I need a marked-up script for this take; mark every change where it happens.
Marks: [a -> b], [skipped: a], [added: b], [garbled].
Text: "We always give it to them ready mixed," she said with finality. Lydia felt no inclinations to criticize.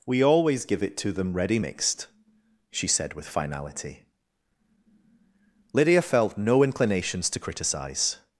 "We always give it to them ready mixed," she said with finality. Lydia felt no inclinations to criticize.